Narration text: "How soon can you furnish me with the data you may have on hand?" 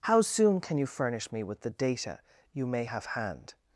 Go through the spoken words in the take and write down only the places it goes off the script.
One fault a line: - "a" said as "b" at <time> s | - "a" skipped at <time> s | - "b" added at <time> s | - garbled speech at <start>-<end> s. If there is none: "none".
- "on" skipped at 3.1 s